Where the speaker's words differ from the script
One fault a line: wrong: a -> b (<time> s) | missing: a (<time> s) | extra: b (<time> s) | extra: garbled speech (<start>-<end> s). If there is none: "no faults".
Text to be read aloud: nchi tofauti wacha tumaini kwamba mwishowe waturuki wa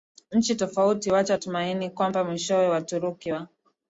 no faults